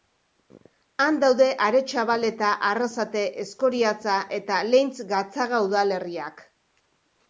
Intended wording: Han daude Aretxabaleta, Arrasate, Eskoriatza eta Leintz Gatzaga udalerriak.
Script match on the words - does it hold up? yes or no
yes